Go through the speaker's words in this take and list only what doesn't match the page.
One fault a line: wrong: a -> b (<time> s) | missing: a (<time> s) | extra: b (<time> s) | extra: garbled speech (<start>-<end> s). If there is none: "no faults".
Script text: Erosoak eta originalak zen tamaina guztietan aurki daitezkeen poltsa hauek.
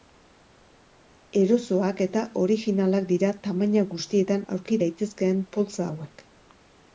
wrong: zen -> dira (3.1 s)